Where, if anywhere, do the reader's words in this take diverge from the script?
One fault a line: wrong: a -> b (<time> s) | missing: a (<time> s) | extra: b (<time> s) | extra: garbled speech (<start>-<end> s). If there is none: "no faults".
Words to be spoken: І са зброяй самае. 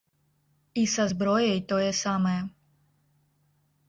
extra: тое (1.7 s)